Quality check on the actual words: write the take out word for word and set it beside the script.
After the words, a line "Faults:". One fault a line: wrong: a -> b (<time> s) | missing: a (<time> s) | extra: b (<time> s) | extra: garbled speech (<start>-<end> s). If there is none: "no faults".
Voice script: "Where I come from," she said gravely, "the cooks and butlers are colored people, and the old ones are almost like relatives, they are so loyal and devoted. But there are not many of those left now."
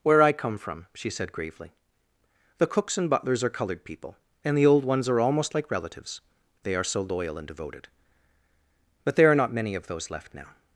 "Where I come from," she said gravely, "the cooks and butlers are colored people, and the old ones are almost like relatives, they are so loyal and devoted. But there are not many of those left now."
Faults:
no faults